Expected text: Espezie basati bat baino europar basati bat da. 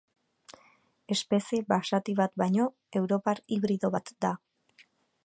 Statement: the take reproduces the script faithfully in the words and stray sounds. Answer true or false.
false